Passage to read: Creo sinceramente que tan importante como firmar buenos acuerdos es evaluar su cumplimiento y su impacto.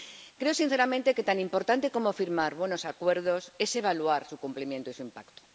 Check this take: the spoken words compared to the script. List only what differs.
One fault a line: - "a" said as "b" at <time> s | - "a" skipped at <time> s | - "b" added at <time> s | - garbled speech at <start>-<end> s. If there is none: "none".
none